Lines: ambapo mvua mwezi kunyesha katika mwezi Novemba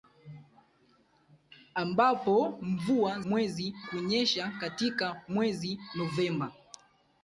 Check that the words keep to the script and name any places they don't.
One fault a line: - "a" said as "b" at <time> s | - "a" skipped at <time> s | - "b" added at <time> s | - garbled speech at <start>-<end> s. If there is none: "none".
none